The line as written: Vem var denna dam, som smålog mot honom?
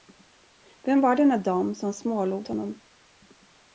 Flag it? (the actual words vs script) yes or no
yes